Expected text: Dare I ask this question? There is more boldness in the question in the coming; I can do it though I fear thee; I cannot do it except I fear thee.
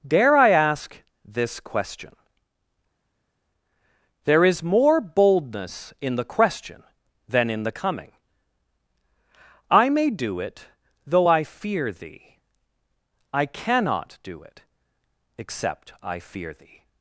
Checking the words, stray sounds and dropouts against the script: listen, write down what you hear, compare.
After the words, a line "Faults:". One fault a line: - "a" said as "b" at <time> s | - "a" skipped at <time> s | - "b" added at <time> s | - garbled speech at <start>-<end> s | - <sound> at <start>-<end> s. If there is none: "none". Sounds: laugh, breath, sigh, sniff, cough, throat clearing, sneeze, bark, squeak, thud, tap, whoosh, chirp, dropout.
Dare I ask this question? There is more boldness in the question than in the coming; I may do it though I fear thee; I cannot do it except I fear thee.
Faults:
- "than" added at 7.3 s
- "can" said as "may" at 9.9 s